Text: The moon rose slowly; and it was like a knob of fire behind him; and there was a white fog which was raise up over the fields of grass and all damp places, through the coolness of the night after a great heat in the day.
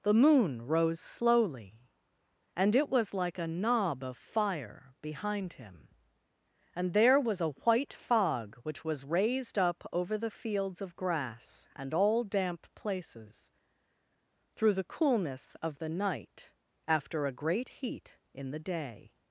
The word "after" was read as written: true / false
true